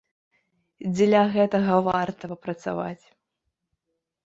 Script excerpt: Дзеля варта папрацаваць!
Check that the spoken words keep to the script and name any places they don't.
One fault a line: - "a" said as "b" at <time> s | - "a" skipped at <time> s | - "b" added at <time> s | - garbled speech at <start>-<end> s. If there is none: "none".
- "гэтага" added at 1.3 s